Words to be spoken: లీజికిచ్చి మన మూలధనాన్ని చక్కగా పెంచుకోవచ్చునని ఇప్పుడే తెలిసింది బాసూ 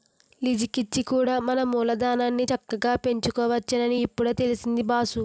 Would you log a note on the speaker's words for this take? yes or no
yes